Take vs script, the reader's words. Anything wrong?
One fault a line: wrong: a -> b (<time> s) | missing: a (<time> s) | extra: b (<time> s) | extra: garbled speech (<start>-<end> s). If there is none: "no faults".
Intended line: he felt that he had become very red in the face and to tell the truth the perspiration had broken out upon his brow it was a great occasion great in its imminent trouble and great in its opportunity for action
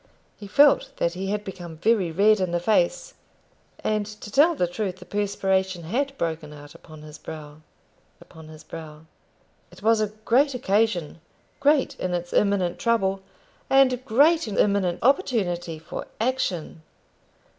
extra: upon his brow (8.2 s)
wrong: its -> imminent (14.5 s)